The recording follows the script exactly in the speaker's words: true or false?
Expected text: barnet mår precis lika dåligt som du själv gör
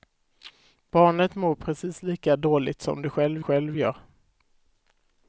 false